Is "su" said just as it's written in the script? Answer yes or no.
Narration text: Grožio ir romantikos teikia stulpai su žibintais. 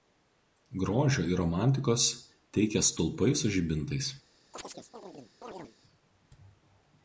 yes